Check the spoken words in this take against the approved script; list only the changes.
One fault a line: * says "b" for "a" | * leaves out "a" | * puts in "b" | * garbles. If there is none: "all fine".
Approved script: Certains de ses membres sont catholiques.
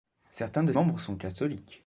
* leaves out "ses"